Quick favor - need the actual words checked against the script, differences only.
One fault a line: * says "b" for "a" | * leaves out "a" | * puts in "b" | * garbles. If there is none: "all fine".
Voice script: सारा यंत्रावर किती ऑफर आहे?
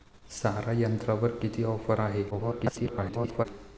* garbles